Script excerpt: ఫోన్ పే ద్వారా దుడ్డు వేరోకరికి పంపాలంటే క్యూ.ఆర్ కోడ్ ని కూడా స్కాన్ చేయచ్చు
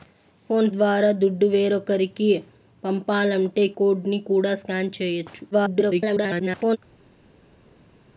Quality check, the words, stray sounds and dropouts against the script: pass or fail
fail